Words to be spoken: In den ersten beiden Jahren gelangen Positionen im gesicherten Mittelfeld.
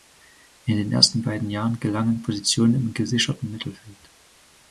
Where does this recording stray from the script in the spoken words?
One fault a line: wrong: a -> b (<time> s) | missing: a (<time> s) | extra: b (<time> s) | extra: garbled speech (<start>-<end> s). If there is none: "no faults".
no faults